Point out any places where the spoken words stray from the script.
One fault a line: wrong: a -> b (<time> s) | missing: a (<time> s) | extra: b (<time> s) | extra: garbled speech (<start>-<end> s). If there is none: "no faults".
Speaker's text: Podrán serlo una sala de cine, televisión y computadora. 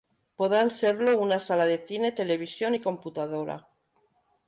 no faults